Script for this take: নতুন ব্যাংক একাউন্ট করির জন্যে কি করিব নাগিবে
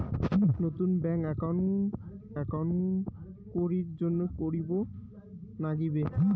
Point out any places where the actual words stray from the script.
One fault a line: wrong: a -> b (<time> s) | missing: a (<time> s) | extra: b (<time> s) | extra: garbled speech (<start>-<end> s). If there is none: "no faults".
extra: একাউন্ট (2.3 s)
missing: কি (4.2 s)